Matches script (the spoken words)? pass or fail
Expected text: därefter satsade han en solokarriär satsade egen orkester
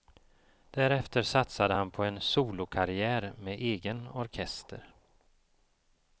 fail